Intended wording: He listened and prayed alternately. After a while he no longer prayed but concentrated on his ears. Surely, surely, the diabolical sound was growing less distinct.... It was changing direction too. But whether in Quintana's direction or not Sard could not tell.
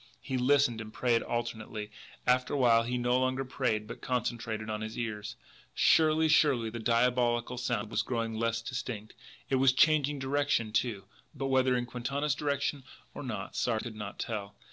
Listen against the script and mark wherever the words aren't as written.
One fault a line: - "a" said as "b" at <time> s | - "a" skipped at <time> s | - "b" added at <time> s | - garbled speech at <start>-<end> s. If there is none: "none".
none